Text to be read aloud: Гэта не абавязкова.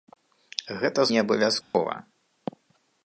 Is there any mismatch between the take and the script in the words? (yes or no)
no